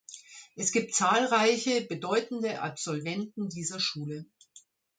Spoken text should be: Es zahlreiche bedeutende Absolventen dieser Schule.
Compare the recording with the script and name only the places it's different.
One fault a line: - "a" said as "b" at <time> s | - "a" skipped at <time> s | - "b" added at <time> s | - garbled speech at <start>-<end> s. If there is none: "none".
- "gibt" added at 0.7 s